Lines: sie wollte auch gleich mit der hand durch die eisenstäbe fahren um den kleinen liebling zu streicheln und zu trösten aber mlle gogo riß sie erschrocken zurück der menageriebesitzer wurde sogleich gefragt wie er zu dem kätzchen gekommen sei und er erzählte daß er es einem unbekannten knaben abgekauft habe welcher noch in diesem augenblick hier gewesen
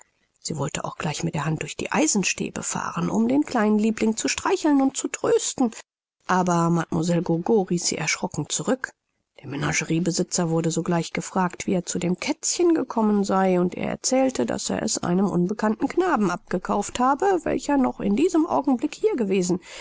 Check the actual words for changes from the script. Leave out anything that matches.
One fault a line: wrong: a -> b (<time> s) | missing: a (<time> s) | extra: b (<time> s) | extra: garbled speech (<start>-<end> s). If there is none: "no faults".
no faults